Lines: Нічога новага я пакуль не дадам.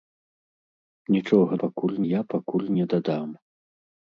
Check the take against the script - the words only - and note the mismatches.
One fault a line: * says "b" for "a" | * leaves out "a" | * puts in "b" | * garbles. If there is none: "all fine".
* says "пакуль" for "новага"